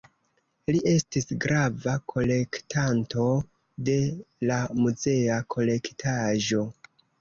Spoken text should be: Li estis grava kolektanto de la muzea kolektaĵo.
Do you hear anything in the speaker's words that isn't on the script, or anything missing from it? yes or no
no